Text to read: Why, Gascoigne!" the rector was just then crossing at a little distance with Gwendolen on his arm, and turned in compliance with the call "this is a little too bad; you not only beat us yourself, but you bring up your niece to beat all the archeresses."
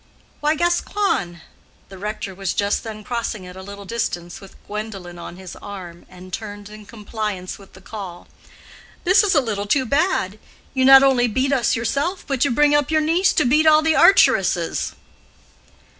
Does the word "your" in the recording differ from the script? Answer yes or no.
no